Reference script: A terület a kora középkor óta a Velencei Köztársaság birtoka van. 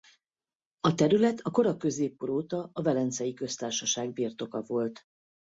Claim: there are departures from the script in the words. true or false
true